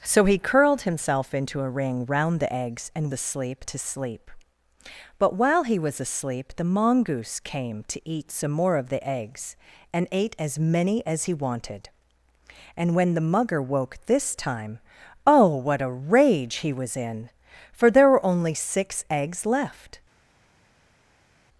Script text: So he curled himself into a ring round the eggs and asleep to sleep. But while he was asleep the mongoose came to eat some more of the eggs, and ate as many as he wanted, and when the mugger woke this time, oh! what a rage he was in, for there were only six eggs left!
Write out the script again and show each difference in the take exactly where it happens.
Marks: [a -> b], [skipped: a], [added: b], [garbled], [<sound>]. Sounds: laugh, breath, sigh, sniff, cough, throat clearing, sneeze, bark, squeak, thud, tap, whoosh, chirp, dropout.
So he curled himself into a ring round the eggs and asleep to sleep. But while he was asleep the mongoose came to eat some more of the eggs, and ate as many as he wanted, and when the mugger woke this time, oh! what a rage he was in, for there were only six eggs left!